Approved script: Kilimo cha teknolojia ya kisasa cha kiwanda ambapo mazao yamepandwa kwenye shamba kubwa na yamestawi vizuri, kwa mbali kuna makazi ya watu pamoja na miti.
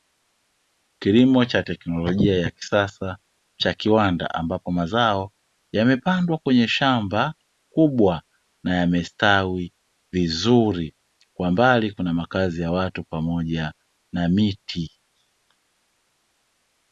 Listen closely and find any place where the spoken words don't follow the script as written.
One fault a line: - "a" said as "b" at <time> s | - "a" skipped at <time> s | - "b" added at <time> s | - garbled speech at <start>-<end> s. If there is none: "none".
none